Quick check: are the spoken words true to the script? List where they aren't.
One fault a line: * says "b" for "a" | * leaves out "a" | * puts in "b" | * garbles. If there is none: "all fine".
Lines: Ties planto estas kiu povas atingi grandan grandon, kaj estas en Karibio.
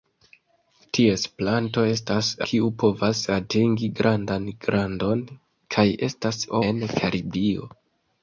all fine